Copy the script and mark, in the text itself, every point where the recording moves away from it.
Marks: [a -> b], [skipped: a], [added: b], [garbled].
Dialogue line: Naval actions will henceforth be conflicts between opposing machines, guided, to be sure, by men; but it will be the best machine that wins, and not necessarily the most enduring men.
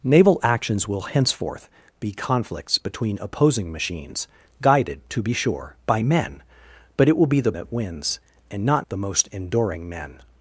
Naval actions will henceforth be conflicts between opposing machines, guided, to be sure, by men; but it will be the [skipped: best machine] that wins, and not [skipped: necessarily] the most enduring men.